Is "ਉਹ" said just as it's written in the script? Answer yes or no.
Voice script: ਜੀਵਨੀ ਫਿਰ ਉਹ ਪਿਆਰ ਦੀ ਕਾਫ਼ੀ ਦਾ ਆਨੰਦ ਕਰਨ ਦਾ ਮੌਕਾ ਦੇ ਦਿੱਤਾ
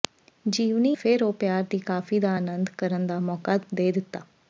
yes